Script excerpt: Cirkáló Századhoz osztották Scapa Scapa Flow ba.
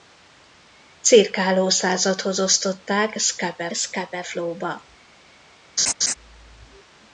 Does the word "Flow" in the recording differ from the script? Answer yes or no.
no